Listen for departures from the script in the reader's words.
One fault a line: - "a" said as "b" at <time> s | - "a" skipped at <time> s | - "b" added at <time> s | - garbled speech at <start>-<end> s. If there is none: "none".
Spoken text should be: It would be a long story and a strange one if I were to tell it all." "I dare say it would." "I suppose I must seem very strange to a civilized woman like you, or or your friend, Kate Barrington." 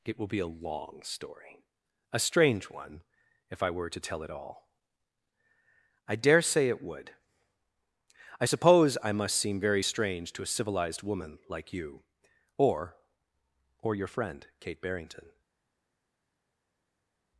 - "would" said as "will" at 0.2 s
- "and" skipped at 1.6 s